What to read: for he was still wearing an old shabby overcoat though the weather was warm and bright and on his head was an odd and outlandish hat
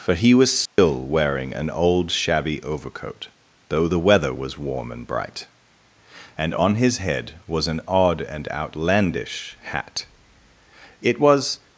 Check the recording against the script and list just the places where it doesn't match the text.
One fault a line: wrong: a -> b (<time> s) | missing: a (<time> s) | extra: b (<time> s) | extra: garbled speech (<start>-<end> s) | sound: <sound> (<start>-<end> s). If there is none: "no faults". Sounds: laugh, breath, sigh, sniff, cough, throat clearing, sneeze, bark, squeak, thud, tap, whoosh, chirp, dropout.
sound: dropout (0.7-0.8 s)
extra: it was (11.0 s)